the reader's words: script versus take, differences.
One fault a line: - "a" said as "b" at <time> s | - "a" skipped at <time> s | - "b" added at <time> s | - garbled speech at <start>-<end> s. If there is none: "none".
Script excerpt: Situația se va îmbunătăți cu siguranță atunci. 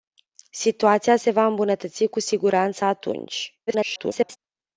- garbled speech at 3.7-4.4 s